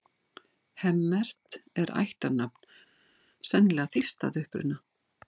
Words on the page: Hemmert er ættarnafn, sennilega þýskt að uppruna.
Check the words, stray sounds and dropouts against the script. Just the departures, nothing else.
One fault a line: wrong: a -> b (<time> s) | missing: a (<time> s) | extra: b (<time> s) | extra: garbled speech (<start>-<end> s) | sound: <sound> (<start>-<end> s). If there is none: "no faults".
no faults